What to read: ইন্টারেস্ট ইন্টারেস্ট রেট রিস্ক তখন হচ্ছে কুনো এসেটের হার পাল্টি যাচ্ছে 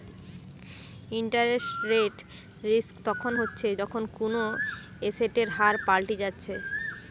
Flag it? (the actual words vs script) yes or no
yes